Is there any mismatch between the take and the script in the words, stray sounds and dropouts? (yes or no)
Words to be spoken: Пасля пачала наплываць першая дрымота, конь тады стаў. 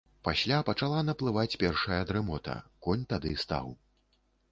no